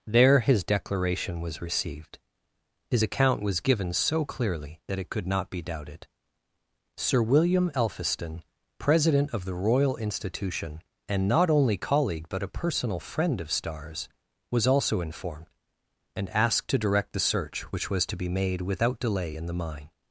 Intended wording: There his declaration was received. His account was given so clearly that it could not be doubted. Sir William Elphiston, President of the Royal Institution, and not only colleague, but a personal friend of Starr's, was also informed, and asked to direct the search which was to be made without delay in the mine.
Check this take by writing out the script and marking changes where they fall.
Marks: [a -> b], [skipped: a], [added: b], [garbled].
There his declaration was received. His account was given so clearly that it could not be doubted. Sir William Elphiston, President of the Royal Institution, and not only colleague, but a personal friend of Starr's, was also informed, and asked to direct the search which was to be made without delay in the mine.